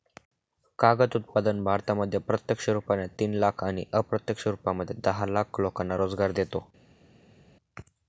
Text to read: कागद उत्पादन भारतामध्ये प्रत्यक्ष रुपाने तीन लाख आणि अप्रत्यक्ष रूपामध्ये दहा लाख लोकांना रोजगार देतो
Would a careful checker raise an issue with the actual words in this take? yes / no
no